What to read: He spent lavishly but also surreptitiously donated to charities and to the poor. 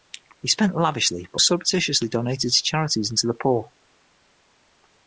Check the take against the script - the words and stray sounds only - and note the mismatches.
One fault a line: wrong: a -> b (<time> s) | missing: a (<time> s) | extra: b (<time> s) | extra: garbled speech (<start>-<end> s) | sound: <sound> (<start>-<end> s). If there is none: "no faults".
missing: also (1.4 s)